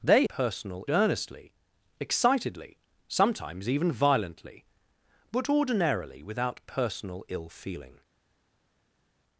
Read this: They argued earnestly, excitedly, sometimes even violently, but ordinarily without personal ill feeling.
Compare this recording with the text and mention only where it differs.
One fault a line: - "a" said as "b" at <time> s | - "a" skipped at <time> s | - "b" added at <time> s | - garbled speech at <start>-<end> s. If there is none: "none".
- "argued" said as "personal" at 0.3 s